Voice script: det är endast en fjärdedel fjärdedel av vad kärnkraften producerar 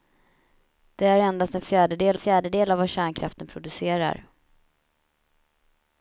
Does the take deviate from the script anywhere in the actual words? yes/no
no